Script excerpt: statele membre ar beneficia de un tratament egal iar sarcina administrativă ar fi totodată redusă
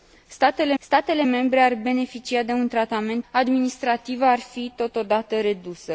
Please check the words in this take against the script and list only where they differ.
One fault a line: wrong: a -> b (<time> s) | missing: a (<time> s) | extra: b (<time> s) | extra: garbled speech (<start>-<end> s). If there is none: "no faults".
extra: statele (0.8 s)
missing: egal iar sarcina (3.3 s)